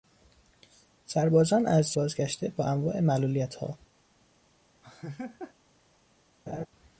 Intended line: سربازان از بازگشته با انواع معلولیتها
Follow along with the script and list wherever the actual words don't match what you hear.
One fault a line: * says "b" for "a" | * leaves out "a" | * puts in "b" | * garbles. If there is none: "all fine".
all fine